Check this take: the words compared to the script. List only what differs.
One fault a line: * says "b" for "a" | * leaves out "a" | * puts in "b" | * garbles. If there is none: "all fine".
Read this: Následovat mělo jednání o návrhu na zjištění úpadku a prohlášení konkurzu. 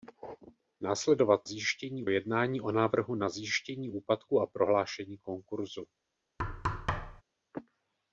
* says "zjištění" for "mělo"